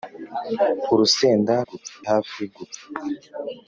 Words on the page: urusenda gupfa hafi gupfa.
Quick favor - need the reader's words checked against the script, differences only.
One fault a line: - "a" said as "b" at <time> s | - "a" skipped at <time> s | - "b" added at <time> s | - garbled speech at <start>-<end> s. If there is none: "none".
none